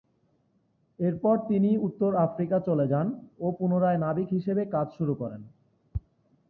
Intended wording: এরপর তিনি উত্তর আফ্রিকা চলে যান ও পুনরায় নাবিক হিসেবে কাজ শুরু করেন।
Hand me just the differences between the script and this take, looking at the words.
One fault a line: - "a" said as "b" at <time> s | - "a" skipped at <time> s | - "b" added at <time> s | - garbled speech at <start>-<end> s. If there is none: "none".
none